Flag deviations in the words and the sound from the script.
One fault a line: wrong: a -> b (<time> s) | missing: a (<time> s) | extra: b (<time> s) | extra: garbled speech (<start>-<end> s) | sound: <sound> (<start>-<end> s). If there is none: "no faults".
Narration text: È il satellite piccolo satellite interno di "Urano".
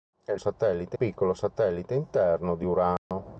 sound: dropout (3.0-3.1 s)